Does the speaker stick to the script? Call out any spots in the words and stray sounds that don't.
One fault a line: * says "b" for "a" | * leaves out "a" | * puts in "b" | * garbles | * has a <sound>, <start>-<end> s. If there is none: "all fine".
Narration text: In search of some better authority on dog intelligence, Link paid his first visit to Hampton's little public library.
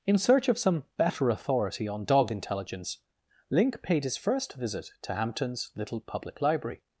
all fine